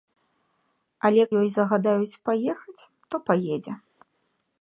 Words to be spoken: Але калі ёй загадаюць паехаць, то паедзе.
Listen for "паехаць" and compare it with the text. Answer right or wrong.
right